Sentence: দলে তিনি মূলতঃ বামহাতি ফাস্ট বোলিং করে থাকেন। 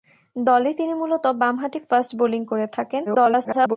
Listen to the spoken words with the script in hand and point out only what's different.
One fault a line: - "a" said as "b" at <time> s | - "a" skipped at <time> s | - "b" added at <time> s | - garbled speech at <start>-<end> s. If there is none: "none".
- garbled speech at 3.1-3.8 s